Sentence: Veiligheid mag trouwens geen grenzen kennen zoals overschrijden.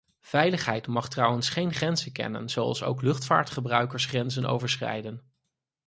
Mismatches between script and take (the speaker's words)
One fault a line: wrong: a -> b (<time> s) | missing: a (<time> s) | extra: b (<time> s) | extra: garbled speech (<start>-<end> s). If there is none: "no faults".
extra: ook luchtvaartgebruikers grenzen (2.8 s)